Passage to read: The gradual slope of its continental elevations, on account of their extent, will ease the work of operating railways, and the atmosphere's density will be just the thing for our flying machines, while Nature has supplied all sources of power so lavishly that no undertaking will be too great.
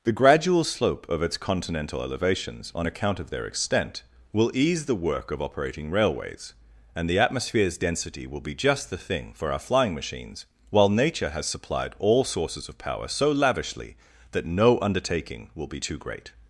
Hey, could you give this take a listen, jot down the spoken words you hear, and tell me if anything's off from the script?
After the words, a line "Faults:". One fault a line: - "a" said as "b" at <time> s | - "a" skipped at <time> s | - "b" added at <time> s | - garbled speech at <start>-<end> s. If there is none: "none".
The gradual slope of its continental elevations, on account of their extent, will ease the work of operating railways, and the atmosphere's density will be just the thing for our flying machines, while Nature has supplied all sources of power so lavishly that no undertaking will be too great.
Faults:
none